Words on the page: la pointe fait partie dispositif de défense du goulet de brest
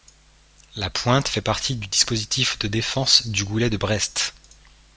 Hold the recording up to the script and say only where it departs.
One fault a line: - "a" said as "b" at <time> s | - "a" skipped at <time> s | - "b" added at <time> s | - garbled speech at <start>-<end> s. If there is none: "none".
- "du" added at 1.7 s